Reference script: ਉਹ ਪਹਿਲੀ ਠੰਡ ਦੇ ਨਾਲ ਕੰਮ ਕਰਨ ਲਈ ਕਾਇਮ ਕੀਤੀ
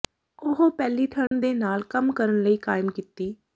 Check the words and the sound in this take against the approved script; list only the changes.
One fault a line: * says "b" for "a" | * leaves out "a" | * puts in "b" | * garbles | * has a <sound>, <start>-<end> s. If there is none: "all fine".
* has a dropout, 1.3-1.3 s